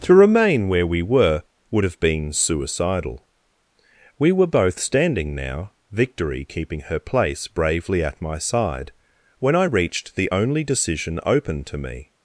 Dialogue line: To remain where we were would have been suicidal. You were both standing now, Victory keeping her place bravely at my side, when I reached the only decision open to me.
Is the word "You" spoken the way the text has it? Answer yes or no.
no